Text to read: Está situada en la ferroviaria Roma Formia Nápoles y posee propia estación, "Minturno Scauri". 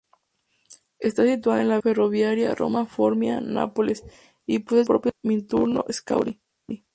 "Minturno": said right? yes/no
yes